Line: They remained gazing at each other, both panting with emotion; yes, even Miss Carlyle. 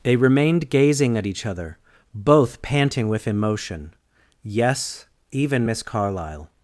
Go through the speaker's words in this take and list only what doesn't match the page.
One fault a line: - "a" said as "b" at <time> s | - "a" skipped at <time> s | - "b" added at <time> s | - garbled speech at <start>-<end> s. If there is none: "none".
none